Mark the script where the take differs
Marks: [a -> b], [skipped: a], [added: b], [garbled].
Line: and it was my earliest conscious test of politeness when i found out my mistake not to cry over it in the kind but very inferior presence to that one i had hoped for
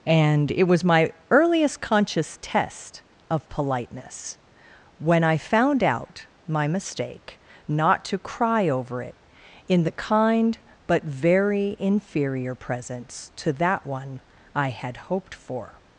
and it was my earliest conscious test of politeness when i found out my mistake not to cry over it in the kind but very inferior presence to that one i had hoped for